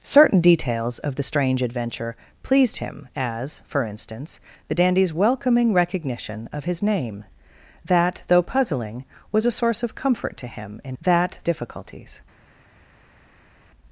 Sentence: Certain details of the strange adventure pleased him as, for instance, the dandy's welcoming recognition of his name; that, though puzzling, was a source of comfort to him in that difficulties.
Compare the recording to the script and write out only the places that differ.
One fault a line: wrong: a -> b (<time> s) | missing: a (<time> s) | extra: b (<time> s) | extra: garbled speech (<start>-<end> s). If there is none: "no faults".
no faults